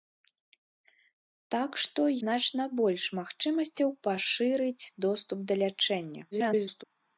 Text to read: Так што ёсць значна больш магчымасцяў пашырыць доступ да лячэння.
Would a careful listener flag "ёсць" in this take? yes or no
yes